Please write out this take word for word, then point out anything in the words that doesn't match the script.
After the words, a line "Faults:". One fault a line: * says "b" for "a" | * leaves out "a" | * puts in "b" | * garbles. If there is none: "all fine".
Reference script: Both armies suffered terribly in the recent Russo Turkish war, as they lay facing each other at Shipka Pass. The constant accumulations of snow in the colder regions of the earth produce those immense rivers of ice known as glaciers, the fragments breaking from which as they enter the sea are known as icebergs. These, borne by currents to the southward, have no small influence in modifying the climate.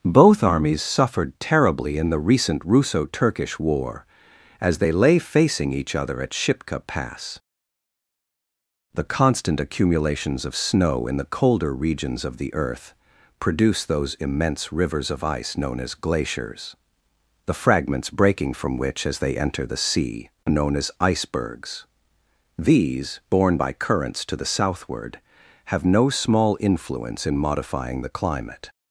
Both armies suffered terribly in the recent Russo Turkish war, as they lay facing each other at Shipka Pass. The constant accumulations of snow in the colder regions of the earth produce those immense rivers of ice known as glaciers, the fragments breaking from which as they enter the sea known as icebergs. These, borne by currents to the southward, have no small influence in modifying the climate.
Faults:
* leaves out "are"